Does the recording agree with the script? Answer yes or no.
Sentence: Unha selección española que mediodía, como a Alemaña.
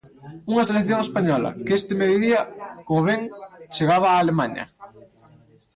no